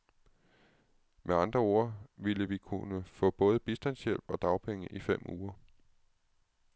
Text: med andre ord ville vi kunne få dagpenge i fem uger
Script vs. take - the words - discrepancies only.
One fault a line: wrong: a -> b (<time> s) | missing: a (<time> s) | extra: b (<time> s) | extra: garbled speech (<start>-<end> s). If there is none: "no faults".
extra: både bistandshjælp og (3.3 s)